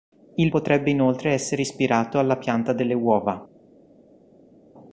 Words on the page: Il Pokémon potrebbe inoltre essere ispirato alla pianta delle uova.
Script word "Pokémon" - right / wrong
wrong